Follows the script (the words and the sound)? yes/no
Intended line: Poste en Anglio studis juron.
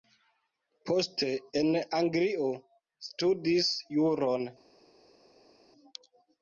yes